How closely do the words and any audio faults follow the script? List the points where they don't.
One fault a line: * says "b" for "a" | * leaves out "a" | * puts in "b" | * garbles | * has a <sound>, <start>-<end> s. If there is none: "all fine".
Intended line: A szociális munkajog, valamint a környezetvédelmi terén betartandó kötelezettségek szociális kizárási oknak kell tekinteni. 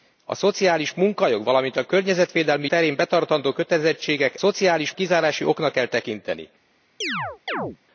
* has a chirp, 7.0-7.8 s